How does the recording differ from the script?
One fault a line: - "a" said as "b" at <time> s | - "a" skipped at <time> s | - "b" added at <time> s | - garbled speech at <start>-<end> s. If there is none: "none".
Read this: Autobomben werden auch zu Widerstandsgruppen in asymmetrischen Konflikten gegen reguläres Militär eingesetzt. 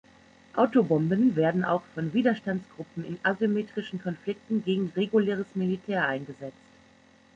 - "zu" said as "von" at 1.9 s